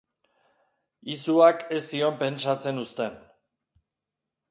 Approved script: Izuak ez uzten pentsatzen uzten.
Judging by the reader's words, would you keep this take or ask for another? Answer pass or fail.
fail